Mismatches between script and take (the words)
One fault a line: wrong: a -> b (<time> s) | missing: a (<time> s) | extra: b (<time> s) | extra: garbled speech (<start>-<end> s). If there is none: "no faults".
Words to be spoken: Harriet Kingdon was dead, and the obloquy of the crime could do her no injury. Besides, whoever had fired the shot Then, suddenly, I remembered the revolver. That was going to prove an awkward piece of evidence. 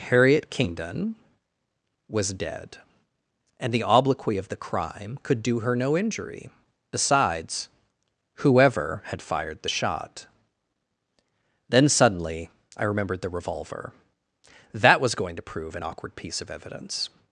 no faults